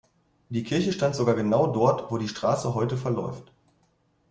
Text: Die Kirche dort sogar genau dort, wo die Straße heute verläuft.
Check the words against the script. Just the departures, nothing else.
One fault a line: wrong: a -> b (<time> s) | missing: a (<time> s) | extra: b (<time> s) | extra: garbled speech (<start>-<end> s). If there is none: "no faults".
wrong: dort -> stand (0.9 s)